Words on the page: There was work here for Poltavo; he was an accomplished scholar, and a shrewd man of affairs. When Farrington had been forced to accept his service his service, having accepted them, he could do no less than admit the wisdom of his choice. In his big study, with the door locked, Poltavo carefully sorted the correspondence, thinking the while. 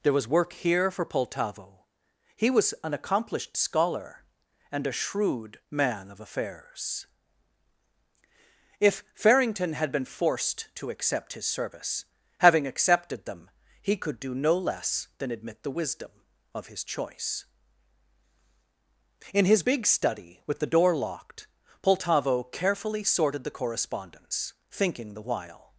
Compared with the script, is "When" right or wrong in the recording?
wrong